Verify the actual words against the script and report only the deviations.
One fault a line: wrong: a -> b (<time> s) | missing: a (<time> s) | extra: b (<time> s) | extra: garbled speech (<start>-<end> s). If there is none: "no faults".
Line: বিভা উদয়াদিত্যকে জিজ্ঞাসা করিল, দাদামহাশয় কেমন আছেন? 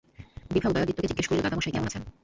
no faults